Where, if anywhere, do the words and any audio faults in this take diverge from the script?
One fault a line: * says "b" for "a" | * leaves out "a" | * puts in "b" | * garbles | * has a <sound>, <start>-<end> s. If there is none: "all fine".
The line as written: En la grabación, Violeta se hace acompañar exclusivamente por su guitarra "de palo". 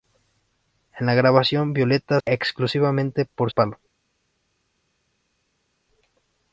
* leaves out "se hace acompañar"
* leaves out "su guitarra de"